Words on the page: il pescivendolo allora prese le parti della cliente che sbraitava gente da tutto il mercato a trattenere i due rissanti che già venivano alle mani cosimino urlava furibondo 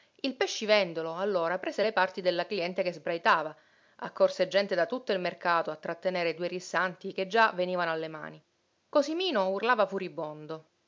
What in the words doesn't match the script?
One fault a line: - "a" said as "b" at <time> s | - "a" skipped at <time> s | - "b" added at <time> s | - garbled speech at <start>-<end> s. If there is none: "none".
- "accorse" added at 4.0 s